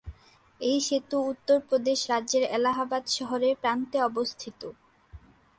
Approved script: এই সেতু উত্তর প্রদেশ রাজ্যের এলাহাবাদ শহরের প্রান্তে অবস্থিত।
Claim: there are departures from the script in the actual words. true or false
false